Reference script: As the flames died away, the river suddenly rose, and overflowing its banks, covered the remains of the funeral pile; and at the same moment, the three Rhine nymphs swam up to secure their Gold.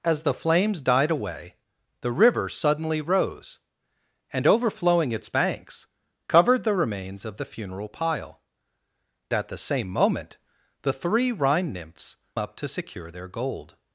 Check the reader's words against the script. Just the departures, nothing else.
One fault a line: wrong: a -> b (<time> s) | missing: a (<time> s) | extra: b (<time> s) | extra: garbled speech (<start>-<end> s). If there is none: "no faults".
missing: and (8.4 s)
missing: swam (12.2 s)